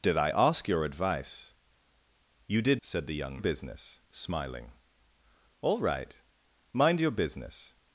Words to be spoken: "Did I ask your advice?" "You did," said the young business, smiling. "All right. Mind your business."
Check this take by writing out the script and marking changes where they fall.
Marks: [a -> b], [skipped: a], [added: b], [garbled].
"Did I ask your advice?" "You did," said the young business, smiling. "All right. Mind your business."